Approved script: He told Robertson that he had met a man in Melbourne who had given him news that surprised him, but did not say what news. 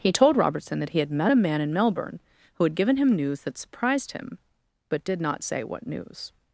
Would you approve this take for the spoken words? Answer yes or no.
yes